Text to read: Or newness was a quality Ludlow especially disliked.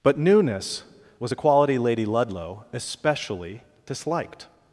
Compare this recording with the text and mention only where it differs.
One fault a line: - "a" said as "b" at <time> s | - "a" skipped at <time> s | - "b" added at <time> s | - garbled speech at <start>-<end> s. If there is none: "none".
- "Or" said as "But" at 0.0 s
- "Lady" added at 1.8 s